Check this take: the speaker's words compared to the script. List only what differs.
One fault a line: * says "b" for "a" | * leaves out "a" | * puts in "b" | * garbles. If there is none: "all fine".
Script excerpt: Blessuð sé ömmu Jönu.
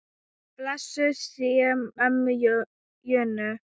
all fine